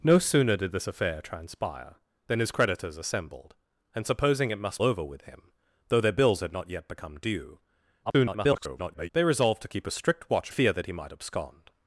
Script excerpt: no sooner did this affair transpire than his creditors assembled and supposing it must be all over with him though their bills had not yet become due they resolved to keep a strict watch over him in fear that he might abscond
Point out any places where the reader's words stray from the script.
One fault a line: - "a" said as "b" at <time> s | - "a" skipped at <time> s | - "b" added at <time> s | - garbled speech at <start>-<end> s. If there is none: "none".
- "be all" skipped at 4.8 s
- garbled speech at 8.0-9.1 s
- "over him in" skipped at 10.5 s